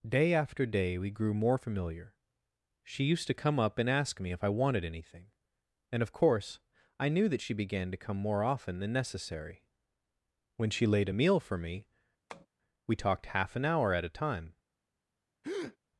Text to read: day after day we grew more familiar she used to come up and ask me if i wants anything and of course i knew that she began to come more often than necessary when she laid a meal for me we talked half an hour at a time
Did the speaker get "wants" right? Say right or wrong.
wrong